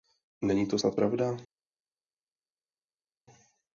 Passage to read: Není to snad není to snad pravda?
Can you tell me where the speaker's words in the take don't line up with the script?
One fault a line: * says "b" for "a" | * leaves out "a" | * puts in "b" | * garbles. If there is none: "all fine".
* leaves out "není to snad"